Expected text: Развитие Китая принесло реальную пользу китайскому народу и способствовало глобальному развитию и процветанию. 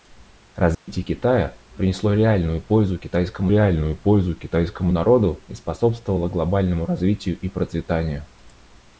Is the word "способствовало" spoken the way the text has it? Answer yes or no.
yes